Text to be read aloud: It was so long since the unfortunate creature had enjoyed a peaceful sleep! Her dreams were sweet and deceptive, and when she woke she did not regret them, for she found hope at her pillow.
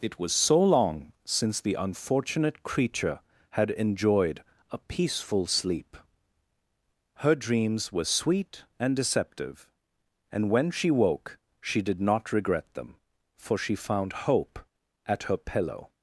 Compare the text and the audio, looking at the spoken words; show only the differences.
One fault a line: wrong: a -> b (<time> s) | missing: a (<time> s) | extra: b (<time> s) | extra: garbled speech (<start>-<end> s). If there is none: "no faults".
no faults